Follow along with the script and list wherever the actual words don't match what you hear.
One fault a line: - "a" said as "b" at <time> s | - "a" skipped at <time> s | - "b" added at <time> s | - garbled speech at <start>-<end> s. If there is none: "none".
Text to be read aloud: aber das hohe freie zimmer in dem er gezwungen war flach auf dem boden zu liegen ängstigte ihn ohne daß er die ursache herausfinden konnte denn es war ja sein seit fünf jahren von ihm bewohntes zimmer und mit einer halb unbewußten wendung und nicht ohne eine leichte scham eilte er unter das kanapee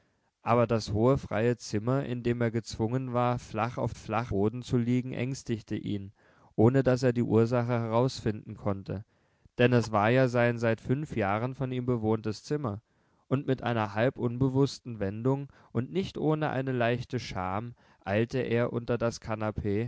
- "dem" said as "flach" at 3.9 s